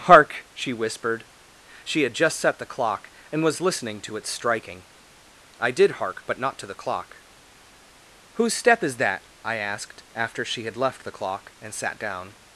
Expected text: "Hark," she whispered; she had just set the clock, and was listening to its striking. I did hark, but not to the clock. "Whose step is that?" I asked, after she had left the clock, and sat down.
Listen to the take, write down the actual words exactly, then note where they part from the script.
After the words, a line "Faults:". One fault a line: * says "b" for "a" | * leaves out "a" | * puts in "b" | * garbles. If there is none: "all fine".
"Hark," she whispered; she had just set the clock, and was listening to its striking. I did hark, but not to the clock. "Whose step is that?" I asked, after she had left the clock, and sat down.
Faults:
all fine